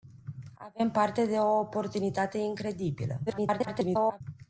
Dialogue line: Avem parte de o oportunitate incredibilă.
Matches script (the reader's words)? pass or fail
fail